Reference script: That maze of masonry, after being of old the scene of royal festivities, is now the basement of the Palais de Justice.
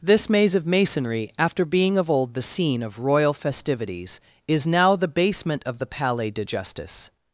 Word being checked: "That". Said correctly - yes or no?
no